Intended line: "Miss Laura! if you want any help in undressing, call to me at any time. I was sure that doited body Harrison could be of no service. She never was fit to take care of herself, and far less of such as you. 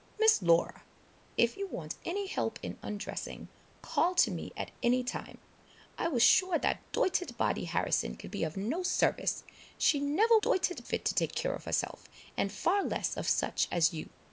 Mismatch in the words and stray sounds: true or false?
true